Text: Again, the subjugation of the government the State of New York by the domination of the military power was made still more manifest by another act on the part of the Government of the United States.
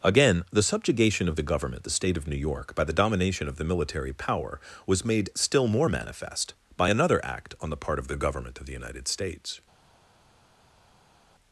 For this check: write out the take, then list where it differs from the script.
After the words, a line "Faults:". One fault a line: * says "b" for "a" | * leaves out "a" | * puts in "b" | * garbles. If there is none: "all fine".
Again, the subjugation of the government the State of New York by the domination of the military power was made still more manifest by another act on the part of the Government of the United States.
Faults:
all fine